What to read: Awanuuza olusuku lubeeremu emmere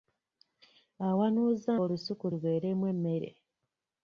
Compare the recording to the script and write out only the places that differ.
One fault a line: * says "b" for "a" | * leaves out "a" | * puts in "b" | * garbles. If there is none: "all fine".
all fine